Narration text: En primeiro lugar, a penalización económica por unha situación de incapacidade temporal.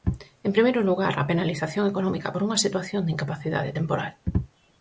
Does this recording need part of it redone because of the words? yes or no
no